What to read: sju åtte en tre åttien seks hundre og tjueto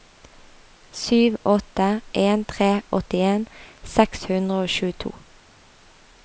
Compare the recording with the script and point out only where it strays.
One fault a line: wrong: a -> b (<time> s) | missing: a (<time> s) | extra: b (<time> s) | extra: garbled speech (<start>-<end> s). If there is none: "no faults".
no faults